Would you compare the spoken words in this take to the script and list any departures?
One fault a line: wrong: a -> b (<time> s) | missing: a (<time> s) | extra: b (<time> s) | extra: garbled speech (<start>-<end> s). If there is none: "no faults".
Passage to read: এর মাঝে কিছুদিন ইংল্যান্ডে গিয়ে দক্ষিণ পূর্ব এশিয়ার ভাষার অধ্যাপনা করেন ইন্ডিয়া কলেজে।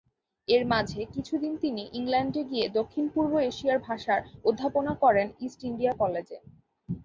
extra: তিনি (1.6 s)
extra: ইস্ট (5.5 s)